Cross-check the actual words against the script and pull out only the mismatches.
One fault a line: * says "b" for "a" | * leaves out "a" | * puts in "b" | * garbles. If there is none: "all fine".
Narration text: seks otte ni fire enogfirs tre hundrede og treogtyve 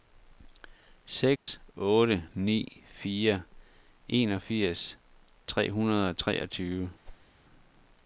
all fine